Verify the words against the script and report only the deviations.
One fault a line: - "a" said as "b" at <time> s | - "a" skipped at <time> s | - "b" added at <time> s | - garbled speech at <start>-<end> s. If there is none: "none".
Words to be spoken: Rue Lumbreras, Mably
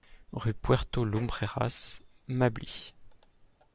- "Puerto" added at 0.6 s